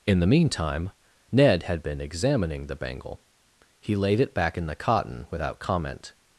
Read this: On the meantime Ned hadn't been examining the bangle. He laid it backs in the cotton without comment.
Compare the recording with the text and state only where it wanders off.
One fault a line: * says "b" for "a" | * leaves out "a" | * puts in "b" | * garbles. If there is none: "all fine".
* says "In" for "On"
* says "had" for "hadn't"
* says "back" for "backs"